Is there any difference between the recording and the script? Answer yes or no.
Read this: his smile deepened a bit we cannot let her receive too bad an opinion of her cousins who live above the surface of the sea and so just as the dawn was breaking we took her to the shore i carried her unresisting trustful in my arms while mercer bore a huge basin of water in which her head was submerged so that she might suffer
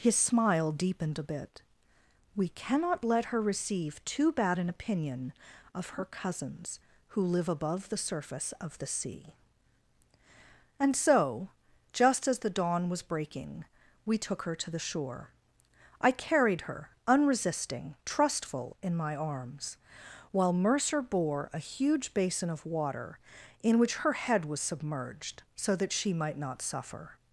yes